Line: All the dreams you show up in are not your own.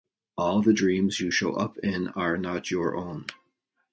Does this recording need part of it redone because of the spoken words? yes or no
no